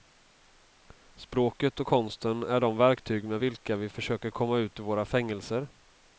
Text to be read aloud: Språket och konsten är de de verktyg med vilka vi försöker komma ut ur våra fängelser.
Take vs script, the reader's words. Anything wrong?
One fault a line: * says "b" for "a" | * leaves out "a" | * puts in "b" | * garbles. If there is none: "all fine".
* leaves out "de"